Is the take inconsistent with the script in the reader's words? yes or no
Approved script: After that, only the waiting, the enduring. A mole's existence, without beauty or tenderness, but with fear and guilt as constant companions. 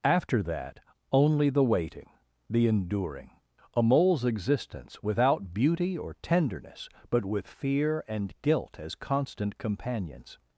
no